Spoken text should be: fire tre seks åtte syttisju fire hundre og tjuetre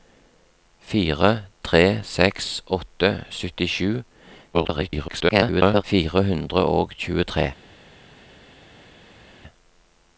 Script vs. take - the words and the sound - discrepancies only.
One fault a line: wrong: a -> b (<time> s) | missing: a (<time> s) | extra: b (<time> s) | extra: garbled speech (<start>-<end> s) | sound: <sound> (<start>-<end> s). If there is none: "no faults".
extra: garbled speech (4.5-5.8 s)